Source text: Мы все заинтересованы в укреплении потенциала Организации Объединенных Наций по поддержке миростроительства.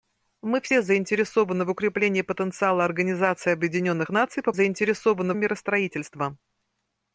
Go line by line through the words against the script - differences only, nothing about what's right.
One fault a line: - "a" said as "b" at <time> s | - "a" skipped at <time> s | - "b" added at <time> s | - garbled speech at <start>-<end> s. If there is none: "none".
- "поддержке" said as "заинтересованы" at 4.5 s